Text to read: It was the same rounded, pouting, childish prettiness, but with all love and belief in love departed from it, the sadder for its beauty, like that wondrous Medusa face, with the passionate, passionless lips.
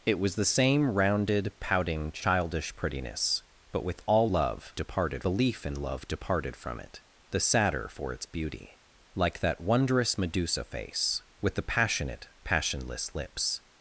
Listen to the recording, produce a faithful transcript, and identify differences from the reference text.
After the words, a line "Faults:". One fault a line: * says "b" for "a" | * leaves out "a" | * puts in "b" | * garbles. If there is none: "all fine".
It was the same rounded, pouting, childish prettiness, but with all love departed belief in love departed from it, the sadder for its beauty, like that wondrous Medusa face, with the passionate, passionless lips.
Faults:
* says "departed" for "and"